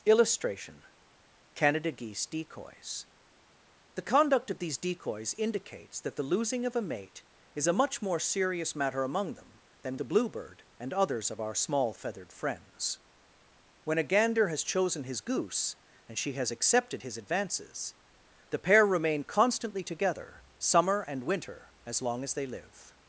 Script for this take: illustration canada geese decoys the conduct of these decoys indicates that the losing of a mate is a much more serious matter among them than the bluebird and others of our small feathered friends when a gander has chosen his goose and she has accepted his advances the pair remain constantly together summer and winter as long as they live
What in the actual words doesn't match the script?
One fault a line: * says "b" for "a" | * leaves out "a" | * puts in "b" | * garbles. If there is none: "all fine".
all fine